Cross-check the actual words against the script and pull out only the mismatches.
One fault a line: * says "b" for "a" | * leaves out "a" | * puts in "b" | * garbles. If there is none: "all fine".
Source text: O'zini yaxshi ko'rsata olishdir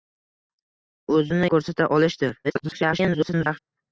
* leaves out "yaxshi"
* garbles